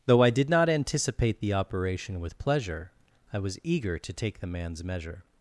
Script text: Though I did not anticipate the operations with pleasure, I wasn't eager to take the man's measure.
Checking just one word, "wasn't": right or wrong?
wrong